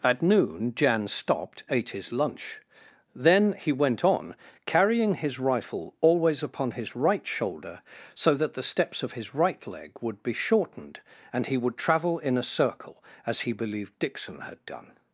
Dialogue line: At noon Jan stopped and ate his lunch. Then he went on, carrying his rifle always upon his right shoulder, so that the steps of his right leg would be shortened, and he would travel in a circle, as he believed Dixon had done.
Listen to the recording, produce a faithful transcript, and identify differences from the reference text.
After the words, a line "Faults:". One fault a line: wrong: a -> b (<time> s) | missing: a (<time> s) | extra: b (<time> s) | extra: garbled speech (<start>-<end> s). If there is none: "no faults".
At noon Jan stopped ate his lunch. Then he went on, carrying his rifle always upon his right shoulder, so that the steps of his right leg would be shortened, and he would travel in a circle, as he believed Dixon had done.
Faults:
missing: and (1.6 s)